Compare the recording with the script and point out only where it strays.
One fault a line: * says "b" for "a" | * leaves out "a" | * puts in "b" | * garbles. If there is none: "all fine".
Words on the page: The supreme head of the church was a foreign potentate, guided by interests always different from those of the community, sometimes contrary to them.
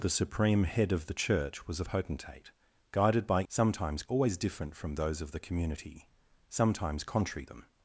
* leaves out "foreign"
* says "sometimes" for "interests"
* leaves out "to"